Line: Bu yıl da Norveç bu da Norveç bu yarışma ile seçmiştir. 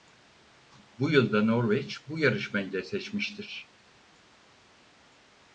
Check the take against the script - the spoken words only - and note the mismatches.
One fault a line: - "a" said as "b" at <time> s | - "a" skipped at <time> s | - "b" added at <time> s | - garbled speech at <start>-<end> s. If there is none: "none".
- "da Norveç bu" skipped at 2.2 s